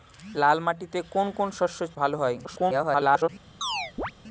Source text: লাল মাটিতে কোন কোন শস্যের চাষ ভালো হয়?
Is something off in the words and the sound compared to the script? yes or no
yes